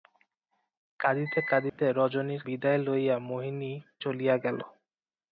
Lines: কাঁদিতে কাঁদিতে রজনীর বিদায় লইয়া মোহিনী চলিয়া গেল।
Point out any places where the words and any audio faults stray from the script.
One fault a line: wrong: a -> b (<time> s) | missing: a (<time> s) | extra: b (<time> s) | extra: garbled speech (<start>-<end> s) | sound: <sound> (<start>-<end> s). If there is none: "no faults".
sound: dropout (1.7-1.8 s)